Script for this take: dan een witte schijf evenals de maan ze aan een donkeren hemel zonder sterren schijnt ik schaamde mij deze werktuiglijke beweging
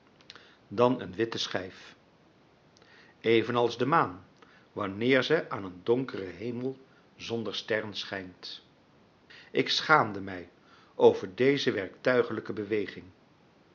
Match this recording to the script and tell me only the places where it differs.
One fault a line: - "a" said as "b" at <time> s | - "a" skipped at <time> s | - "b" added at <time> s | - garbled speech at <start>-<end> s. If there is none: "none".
- "wanneer" added at 4.7 s
- "over" added at 11.0 s